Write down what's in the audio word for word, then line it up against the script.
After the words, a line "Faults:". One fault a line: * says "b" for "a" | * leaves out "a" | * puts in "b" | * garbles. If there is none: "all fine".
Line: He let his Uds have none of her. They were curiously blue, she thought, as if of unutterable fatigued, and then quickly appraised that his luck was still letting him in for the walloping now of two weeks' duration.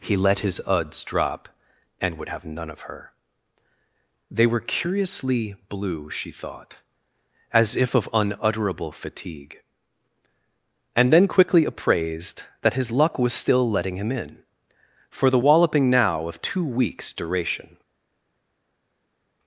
He let his Uds drop and would have none of her. They were curiously blue, she thought, as if of unutterable fatigue, and then quickly appraised that his luck was still letting him in for the walloping now of two weeks' duration.
Faults:
* puts in "drop and would"
* says "fatigue" for "fatigued"